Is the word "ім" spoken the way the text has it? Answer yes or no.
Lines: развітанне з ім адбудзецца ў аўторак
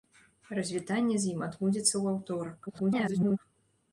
yes